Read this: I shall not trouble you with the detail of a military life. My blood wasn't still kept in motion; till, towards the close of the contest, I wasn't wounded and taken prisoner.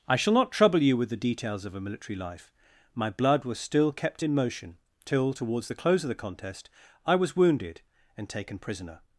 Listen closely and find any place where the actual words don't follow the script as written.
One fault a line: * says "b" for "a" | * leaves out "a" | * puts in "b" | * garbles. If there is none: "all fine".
* says "details" for "detail"
* says "was" for "wasn't"
* says "was" for "wasn't"